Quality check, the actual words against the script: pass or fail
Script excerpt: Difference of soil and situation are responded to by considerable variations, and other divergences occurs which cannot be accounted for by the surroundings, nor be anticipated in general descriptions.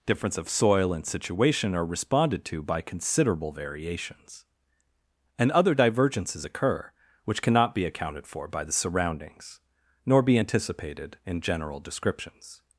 fail